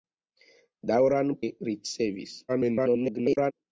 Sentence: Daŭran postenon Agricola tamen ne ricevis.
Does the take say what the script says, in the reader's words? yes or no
no